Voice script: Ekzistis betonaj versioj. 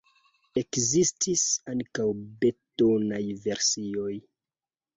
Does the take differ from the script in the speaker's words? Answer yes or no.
yes